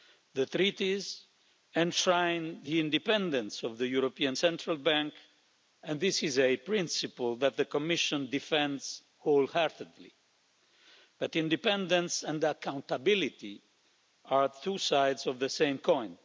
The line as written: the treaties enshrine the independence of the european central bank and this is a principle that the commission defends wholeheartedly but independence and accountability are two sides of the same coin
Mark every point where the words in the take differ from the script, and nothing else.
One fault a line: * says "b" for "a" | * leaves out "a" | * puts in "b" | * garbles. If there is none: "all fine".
all fine